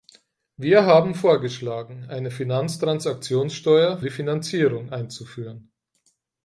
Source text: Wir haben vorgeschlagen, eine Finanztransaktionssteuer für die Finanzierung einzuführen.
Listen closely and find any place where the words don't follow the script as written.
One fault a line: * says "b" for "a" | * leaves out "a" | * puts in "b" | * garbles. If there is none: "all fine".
* leaves out "für"